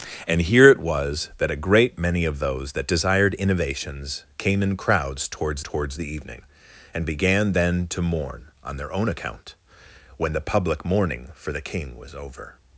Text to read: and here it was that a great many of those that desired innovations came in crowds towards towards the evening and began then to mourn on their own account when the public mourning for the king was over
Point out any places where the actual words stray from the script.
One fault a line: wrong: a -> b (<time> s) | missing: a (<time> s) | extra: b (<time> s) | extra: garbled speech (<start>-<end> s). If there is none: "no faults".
no faults